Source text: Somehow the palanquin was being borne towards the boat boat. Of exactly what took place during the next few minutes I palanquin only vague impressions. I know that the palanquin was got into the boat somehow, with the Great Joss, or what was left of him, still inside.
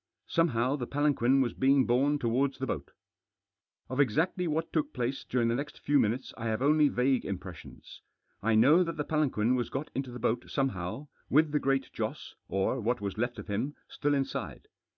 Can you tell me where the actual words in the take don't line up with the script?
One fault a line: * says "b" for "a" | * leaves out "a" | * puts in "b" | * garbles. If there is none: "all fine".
* leaves out "boat"
* says "have" for "palanquin"